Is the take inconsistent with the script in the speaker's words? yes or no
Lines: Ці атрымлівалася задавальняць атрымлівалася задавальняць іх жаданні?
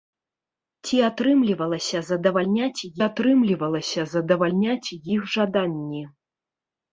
no